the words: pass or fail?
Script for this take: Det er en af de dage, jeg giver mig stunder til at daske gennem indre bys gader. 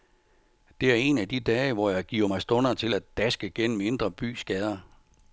fail